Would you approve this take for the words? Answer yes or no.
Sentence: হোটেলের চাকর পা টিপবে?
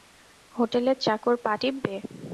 yes